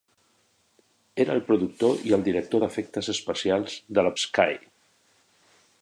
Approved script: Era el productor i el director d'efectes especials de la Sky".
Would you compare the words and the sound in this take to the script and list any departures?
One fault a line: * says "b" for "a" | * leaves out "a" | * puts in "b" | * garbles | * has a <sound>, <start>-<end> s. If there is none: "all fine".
all fine